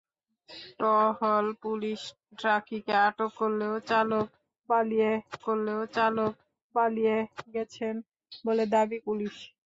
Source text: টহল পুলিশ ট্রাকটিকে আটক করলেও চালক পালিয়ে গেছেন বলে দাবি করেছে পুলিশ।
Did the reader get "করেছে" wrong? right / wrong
wrong